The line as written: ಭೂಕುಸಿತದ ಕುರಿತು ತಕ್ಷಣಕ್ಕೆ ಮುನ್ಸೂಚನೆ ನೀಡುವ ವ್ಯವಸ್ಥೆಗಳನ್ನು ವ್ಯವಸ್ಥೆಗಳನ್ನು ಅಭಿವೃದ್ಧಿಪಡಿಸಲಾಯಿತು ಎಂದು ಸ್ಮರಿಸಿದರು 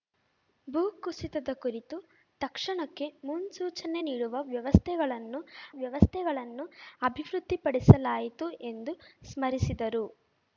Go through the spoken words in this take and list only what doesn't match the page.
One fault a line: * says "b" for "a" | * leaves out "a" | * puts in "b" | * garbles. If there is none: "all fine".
all fine